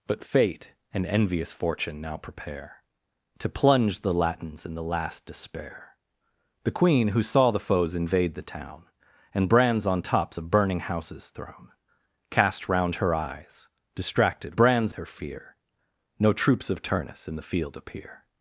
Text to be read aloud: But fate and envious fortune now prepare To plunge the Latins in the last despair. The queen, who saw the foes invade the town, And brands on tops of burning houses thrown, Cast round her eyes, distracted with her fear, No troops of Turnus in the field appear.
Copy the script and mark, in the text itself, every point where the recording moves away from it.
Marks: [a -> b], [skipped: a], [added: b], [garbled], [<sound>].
But fate and envious fortune now prepare To plunge the Latins in the last despair. The queen, who saw the foes invade the town, And brands on tops of burning houses thrown, Cast round her eyes, distracted [with -> brands] her fear, No troops of Turnus in the field appear.